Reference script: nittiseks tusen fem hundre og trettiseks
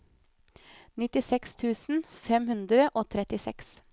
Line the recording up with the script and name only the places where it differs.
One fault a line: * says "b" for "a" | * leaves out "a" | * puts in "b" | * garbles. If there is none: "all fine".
all fine